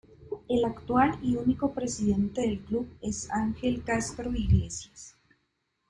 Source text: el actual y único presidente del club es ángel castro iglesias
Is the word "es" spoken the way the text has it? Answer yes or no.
yes